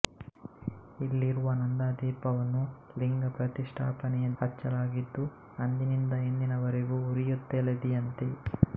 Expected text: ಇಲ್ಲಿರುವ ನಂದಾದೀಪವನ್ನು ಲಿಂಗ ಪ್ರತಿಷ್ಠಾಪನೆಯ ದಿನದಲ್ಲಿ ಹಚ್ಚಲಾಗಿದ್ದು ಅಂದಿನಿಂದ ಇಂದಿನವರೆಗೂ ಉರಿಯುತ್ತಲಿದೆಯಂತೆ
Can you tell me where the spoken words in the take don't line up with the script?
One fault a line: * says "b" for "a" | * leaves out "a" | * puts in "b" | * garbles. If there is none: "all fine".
* leaves out "ದಿನದಲ್ಲಿ"